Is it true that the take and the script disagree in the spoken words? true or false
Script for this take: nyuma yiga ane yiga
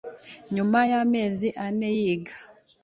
true